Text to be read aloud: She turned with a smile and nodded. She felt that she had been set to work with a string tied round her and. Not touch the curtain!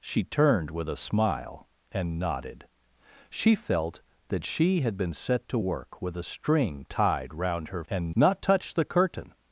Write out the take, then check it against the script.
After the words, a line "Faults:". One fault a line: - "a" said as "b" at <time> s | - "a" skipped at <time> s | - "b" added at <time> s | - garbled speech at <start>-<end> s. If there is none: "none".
She turned with a smile and nodded. She felt that she had been set to work with a string tied round her and. Not touch the curtain!
Faults:
none